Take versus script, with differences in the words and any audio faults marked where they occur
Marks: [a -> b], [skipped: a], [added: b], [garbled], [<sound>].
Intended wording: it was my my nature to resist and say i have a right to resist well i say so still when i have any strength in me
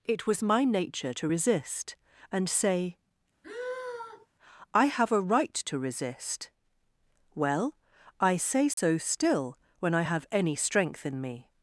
it was my [skipped: my] nature to resist and say [sigh] i have a right to resist well i say so [dropout] still when i have any strength in me